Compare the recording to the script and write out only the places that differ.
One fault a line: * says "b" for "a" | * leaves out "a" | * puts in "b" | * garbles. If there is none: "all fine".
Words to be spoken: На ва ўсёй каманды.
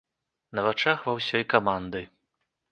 * puts in "вачах"